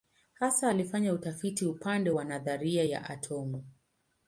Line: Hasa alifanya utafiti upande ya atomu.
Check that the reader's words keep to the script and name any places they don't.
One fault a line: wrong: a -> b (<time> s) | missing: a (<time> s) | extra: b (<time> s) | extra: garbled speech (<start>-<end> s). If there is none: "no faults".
extra: wa nadharia (2.1 s)